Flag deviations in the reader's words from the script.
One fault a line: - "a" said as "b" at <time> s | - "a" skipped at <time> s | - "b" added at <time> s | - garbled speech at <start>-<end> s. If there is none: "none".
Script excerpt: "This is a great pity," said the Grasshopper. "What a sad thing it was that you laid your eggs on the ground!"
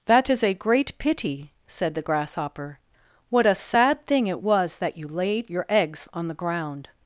- "This" said as "That" at 0.1 s